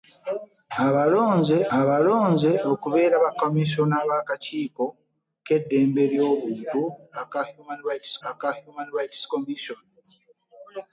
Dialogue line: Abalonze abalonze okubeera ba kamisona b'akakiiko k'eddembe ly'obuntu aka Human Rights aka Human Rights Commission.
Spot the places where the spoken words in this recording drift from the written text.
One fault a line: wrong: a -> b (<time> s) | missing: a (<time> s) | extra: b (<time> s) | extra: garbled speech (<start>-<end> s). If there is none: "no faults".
no faults